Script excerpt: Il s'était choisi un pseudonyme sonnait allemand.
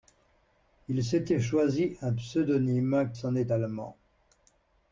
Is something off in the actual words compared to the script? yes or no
no